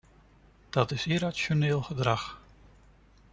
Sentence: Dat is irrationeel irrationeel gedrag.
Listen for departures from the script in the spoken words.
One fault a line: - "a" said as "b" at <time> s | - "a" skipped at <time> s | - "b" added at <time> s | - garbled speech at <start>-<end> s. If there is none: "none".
- "irrationeel" skipped at 1.8 s